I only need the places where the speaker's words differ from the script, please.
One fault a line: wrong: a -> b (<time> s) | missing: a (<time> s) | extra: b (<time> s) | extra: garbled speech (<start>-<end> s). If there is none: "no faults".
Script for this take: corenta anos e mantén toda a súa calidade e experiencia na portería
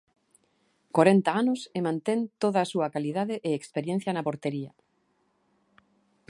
no faults